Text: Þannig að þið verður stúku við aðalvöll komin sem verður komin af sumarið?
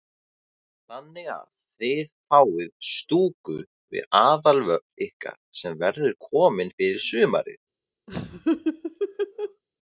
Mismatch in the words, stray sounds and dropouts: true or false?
true